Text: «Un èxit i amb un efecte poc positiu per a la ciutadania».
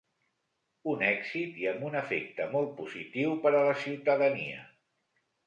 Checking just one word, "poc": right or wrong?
wrong